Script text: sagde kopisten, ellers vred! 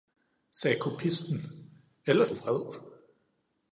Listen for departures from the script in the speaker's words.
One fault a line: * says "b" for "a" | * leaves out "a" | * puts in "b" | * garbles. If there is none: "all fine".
all fine